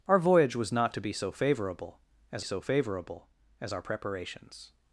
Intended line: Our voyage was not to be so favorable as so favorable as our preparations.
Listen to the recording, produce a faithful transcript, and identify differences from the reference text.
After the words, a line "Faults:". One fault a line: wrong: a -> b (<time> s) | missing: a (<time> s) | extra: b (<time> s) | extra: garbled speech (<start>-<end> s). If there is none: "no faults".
Our voyage was not to be so favorable as so favorable as our preparations.
Faults:
no faults